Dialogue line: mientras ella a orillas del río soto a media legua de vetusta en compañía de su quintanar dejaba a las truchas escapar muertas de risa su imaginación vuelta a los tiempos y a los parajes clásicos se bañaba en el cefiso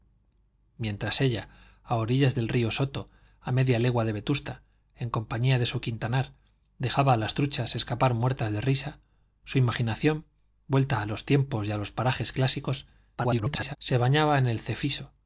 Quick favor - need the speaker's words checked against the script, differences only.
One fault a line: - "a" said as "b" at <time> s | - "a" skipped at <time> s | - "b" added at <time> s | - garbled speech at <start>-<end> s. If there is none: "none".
- garbled speech at 13.2-13.8 s